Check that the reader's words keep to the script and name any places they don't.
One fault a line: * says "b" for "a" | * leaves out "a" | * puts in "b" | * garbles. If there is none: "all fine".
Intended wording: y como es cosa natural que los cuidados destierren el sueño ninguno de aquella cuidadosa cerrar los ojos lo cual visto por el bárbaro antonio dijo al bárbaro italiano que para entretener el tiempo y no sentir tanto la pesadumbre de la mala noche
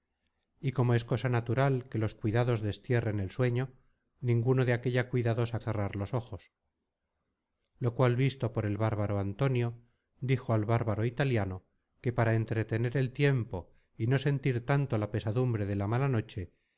all fine